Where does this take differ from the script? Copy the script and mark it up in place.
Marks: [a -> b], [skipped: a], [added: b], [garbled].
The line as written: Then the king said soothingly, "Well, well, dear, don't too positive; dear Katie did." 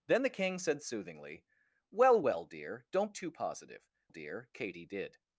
Then the king said soothingly, "Well, well, dear, don't too positive; dear Katie did."